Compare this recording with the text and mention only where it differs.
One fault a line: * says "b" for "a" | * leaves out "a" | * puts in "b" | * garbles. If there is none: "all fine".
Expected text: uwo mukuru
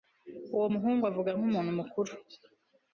* puts in "muhungu avuga nkumuntu"